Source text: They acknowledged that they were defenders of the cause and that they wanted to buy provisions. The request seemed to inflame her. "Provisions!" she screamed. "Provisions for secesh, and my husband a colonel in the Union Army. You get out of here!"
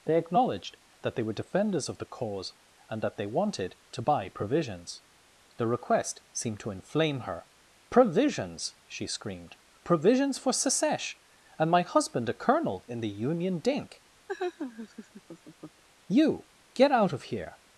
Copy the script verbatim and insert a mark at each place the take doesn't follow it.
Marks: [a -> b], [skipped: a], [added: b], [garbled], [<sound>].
They acknowledged that they were defenders of the cause and that they wanted to buy provisions. The request seemed to inflame her. "Provisions!" she screamed. "Provisions for secesh, and my husband a colonel in the Union [Army. -> Dink] [laugh] You get out of here!"